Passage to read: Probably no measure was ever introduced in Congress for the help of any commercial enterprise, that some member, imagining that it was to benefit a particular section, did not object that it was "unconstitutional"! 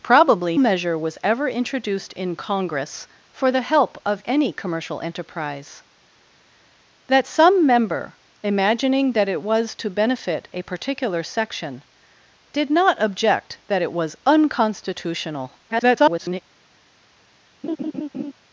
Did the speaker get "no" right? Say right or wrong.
wrong